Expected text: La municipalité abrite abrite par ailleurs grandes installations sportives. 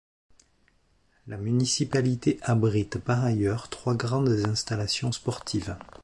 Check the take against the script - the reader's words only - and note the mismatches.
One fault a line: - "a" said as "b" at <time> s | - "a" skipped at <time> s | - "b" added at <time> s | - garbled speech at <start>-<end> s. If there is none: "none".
- "abrite" skipped at 3.0 s
- "trois" added at 3.7 s